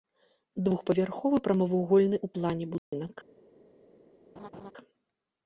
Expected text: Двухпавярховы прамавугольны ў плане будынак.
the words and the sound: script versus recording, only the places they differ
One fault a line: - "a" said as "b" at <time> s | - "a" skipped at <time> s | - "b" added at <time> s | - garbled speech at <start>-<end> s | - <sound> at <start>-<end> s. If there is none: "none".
- dropout at 2.8-2.9 s
- laugh at 4.4-4.7 s